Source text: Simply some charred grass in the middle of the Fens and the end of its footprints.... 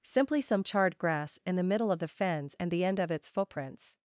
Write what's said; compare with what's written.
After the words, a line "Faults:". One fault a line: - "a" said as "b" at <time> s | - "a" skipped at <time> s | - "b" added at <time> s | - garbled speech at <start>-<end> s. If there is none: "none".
Simply some charred grass in the middle of the Fens and the end of its footprints....
Faults:
none